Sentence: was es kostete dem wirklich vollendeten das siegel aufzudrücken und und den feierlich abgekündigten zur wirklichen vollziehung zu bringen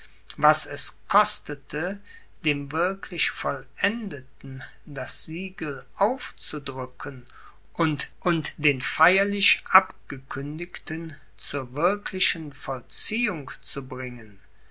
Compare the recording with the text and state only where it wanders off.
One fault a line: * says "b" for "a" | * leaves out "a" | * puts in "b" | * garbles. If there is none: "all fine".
all fine